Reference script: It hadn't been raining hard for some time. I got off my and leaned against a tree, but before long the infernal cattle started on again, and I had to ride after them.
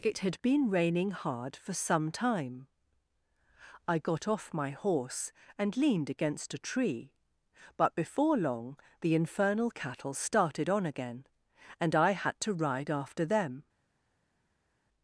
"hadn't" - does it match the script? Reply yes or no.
no